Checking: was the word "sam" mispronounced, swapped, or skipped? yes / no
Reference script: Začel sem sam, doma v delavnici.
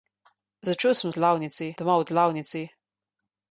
yes